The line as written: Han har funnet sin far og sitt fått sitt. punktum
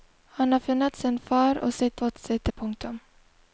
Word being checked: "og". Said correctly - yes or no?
yes